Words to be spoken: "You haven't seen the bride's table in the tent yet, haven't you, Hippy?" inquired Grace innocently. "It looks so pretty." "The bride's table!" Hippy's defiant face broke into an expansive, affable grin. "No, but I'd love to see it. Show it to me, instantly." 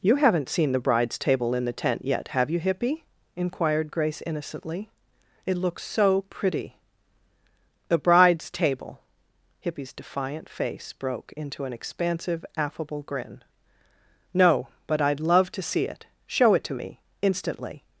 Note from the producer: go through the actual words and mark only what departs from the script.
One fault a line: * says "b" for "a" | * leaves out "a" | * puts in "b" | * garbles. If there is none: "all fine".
* says "have" for "haven't"